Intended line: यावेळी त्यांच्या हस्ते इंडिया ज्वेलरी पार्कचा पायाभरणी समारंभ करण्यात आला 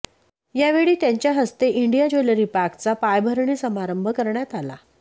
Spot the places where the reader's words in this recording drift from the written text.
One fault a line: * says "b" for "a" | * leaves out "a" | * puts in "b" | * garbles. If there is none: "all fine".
all fine